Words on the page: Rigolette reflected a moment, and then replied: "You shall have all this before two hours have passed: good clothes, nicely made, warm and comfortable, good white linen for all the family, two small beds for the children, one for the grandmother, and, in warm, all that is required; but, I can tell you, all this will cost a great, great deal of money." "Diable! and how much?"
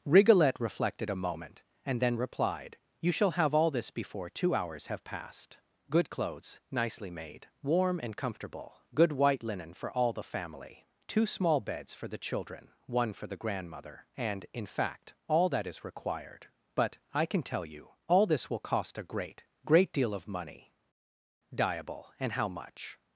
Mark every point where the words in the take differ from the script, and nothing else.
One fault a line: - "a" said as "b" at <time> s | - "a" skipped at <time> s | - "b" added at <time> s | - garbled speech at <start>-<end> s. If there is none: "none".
- "warm" said as "fact" at 14.7 s